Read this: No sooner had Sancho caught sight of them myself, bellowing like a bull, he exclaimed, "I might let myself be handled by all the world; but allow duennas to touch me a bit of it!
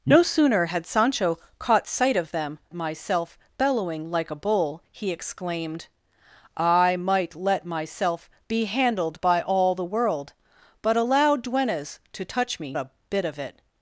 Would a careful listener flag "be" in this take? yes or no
no